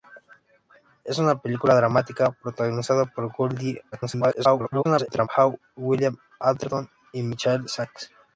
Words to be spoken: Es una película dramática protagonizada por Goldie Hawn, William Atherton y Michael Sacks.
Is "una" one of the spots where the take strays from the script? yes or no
no